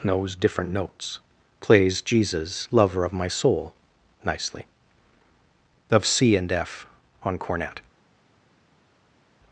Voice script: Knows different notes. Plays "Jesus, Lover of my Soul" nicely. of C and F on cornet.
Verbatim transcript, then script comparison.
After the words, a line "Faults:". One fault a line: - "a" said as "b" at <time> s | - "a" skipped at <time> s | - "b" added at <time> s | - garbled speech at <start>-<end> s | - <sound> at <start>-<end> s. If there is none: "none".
Knows different notes. Plays "Jesus, Lover of my Soul" nicely. of C and F on cornet.
Faults:
none